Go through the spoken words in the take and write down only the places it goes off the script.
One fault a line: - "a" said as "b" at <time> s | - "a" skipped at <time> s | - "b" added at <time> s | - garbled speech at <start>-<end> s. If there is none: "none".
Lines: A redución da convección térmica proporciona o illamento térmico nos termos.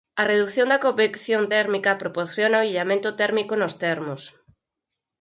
none